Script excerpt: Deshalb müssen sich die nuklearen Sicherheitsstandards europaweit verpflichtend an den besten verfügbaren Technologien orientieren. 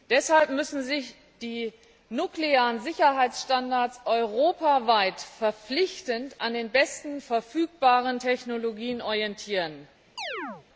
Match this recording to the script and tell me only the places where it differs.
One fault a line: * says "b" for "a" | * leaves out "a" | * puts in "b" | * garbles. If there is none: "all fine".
all fine